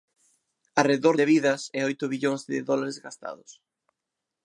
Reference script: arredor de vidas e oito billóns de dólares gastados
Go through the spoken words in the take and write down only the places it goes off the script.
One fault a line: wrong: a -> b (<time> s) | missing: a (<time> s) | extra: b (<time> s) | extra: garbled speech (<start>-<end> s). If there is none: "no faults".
no faults